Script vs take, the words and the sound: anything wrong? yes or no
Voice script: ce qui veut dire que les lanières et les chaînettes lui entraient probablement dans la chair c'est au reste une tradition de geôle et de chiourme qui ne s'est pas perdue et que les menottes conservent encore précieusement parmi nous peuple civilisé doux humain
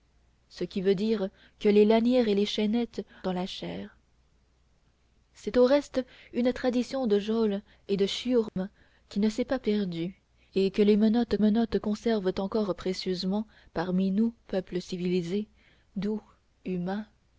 yes